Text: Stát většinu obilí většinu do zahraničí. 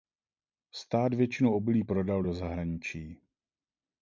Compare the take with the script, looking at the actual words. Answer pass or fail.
fail